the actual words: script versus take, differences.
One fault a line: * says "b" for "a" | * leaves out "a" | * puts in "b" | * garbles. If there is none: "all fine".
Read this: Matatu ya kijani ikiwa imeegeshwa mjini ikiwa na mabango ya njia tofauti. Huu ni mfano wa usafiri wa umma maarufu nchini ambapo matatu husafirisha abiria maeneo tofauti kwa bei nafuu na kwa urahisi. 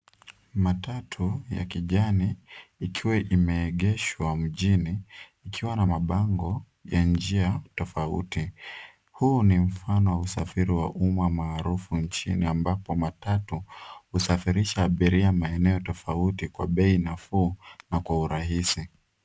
all fine